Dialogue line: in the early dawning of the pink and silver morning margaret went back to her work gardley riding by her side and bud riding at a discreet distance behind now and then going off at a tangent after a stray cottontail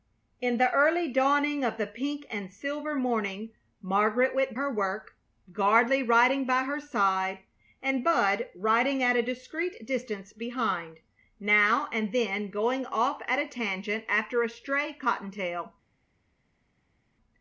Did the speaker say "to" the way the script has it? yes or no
no